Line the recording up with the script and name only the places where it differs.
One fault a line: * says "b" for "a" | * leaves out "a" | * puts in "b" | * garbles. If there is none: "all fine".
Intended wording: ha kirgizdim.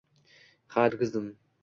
all fine